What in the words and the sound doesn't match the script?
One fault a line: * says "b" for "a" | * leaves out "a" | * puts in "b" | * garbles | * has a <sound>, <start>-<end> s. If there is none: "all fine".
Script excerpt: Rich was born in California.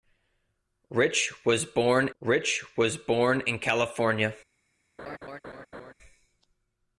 * puts in "rich was born"
* has a laugh, 5.0-5.9 s